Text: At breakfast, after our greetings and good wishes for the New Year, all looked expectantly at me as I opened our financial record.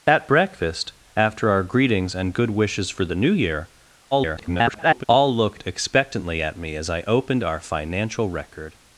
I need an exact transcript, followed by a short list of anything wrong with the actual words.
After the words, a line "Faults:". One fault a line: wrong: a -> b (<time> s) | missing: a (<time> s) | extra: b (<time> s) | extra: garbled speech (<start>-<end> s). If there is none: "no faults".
At breakfast, after our greetings and good wishes for the New Year, [garbled] all looked expectantly at me as I opened our financial record.
Faults:
extra: garbled speech (4.1-5.0 s)